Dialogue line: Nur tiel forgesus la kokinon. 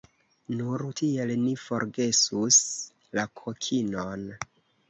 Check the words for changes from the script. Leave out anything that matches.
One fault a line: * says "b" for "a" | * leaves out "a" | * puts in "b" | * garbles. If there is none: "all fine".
* puts in "ni"